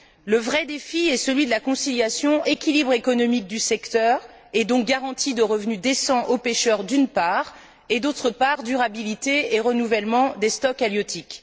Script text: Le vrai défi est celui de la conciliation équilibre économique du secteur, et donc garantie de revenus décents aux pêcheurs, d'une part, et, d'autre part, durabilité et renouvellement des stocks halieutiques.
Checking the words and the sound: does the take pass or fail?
pass